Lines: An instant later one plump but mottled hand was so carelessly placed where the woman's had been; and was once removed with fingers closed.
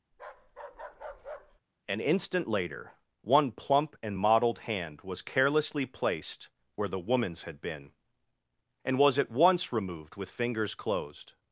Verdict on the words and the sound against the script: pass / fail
fail